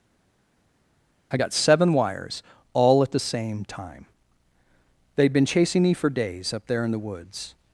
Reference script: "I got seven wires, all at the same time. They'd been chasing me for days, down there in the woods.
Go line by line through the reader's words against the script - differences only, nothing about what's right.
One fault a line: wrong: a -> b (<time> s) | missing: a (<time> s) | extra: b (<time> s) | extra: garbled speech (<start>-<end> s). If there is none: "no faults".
wrong: down -> up (6.5 s)